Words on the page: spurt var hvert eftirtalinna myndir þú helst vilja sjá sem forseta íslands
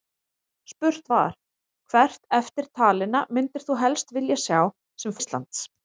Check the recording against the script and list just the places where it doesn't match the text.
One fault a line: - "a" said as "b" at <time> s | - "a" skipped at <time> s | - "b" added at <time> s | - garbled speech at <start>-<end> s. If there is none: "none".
- "forseta" skipped at 5.2 s